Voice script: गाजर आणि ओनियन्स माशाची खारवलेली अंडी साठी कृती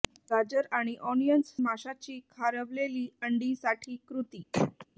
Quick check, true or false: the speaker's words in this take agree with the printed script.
true